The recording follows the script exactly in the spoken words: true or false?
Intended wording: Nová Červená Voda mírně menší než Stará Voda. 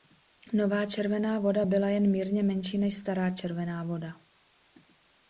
false